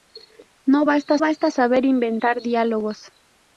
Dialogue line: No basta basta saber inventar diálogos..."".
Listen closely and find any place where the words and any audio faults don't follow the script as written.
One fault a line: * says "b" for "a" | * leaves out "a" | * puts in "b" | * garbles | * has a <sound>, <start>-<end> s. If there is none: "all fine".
all fine